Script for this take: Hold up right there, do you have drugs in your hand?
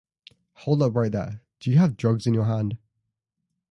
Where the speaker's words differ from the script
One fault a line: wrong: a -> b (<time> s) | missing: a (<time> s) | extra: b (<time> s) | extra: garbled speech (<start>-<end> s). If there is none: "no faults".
no faults